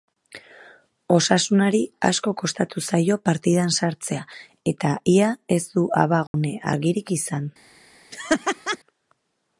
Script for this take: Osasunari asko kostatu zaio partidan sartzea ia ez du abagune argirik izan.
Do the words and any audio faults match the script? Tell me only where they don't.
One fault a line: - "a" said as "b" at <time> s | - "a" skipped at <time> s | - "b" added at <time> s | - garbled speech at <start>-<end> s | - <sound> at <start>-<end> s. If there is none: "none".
- "eta" added at 4.7 s
- dropout at 6.3-6.3 s
- laugh at 8.1-8.8 s